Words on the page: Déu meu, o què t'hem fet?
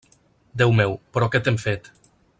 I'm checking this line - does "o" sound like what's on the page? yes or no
no